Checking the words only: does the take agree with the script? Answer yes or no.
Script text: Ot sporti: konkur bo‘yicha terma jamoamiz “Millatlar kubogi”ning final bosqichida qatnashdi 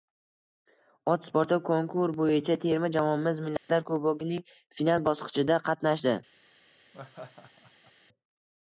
yes